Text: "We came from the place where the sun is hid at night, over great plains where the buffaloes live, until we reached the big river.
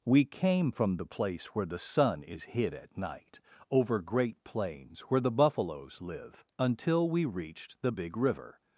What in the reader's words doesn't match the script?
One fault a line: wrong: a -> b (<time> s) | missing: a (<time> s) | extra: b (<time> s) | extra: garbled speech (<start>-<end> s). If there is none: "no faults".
no faults